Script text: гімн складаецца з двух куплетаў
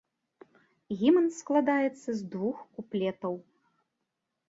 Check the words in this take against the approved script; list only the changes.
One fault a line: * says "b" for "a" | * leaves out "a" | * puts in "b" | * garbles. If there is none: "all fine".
all fine